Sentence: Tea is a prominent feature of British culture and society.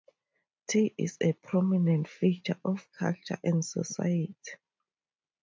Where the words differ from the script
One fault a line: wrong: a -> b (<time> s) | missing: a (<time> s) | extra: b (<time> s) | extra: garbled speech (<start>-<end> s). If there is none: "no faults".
missing: British (2.9 s)